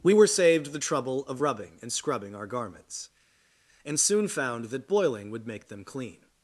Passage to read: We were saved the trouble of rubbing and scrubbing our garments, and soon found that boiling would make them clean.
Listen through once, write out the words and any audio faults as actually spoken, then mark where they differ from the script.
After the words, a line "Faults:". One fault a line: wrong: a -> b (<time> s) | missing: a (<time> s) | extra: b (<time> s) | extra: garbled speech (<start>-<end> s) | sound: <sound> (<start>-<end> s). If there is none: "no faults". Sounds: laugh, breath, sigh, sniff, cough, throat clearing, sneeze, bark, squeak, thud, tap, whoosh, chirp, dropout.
We were saved the trouble of rubbing and scrubbing our garments, and soon found that boiling would make them clean.
Faults:
no faults